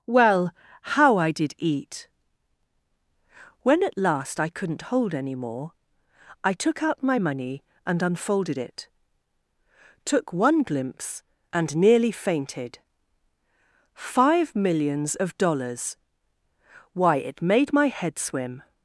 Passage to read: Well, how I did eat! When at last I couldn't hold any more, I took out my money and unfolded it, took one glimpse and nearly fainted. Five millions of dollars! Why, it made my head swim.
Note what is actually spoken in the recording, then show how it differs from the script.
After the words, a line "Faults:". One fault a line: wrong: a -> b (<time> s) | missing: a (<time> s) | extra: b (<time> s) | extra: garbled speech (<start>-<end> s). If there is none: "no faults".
Well, how I did eat! When at last I couldn't hold any more, I took out my money and unfolded it, took one glimpse and nearly fainted. Five millions of dollars! Why, it made my head swim.
Faults:
no faults